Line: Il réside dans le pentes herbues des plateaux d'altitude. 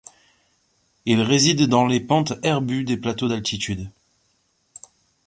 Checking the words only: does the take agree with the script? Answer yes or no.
no